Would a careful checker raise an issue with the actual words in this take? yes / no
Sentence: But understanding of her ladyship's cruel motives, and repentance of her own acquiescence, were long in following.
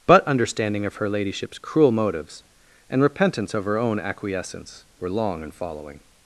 no